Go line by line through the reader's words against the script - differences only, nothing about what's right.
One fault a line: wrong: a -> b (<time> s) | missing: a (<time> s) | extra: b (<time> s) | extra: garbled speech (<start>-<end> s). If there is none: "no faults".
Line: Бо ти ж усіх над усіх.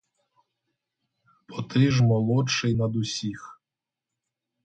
wrong: усіх -> молодший (2.0 s)